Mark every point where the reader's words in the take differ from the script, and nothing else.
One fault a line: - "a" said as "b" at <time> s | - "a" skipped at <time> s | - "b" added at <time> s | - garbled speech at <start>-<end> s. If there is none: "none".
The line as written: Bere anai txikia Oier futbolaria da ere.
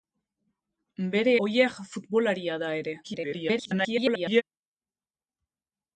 - "anai txikia" skipped at 1.4 s
- garbled speech at 3.0-4.4 s